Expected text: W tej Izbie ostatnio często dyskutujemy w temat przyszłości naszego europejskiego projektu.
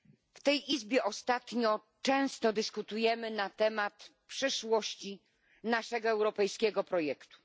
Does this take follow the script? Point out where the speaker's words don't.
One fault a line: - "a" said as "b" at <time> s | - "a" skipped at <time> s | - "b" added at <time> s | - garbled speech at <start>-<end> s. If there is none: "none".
- "w" said as "na" at 3.3 s